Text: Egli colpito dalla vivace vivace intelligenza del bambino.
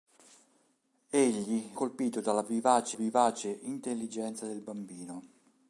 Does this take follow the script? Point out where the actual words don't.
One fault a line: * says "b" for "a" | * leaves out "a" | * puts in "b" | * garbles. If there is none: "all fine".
all fine